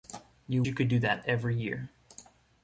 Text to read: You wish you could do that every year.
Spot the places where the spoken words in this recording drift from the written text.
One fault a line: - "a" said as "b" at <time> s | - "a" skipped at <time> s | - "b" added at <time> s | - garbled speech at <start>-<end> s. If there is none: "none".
- "wish" skipped at 0.6 s